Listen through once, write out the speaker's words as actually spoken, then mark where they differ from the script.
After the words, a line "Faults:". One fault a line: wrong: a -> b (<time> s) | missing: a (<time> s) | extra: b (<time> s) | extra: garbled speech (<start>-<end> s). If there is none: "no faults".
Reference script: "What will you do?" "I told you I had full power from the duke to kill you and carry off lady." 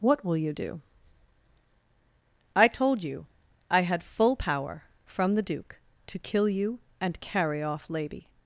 "What will you do?" "I told you I had full power from the duke to kill you and carry off lady."
Faults:
no faults